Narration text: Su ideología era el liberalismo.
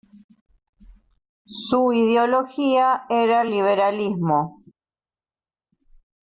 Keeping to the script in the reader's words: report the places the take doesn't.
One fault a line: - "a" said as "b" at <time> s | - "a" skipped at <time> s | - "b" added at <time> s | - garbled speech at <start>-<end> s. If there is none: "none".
none